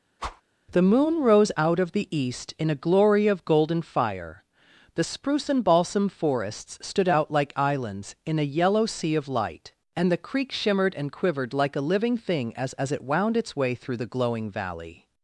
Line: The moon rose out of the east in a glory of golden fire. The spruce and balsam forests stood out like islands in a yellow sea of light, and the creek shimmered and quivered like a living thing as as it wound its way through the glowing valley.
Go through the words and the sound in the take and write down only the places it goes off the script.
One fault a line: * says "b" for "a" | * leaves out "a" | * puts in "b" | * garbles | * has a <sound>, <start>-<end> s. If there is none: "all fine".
* has a whoosh, 0.2-0.4 s